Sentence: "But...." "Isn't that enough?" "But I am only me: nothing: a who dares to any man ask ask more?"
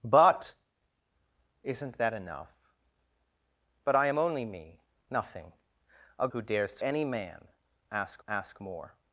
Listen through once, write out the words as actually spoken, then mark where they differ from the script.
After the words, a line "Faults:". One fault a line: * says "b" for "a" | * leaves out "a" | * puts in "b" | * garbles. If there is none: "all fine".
"But...." "Isn't that enough?" "But I am only me: nothing: a who dares to any man ask ask more?"
Faults:
all fine